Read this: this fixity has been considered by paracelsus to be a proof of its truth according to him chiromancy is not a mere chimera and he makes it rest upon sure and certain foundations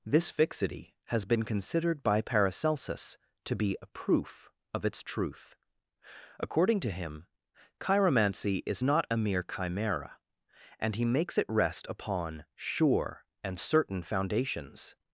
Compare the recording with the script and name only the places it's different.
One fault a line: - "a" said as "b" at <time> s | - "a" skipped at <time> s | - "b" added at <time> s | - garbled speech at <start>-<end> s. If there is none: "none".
none